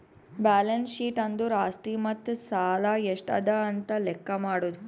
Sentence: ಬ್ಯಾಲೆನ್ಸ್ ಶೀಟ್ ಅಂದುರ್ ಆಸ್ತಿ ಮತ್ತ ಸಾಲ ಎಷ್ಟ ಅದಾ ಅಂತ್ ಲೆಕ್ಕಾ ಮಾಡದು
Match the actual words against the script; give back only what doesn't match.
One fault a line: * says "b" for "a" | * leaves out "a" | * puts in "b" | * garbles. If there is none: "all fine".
all fine